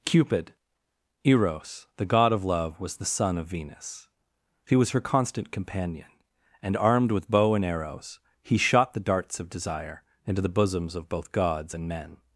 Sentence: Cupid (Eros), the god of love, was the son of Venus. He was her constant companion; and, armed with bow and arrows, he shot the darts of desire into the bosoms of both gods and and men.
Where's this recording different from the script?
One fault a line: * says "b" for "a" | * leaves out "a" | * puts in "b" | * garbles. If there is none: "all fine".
* leaves out "and"